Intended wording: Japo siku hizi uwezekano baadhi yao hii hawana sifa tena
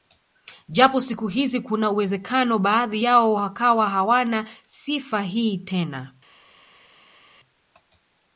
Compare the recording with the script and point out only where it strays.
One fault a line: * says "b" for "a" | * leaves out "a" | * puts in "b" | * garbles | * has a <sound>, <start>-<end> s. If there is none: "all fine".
* puts in "kuna"
* says "wakawa" for "hii"
* puts in "hii"